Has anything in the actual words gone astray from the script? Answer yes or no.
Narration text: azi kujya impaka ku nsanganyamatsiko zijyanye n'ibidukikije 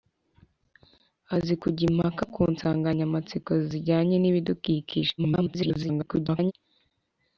yes